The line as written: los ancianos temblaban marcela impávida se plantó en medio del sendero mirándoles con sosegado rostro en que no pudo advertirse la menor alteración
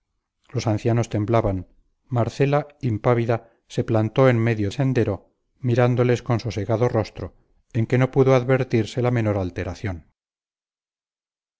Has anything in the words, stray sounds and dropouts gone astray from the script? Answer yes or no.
yes